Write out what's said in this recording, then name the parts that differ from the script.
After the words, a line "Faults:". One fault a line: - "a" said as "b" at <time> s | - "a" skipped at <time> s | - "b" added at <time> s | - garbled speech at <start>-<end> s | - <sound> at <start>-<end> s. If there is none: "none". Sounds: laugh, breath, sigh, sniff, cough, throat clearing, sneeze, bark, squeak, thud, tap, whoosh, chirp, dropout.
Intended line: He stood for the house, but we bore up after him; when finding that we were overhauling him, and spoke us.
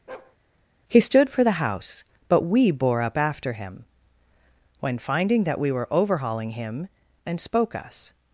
He stood for the house, but we bore up after him; when finding that we were overhauling him, and spoke us.
Faults:
- bark at 0.1-0.4 s